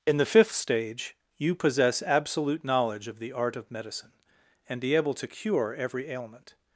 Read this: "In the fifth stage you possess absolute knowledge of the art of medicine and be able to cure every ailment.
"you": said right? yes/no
yes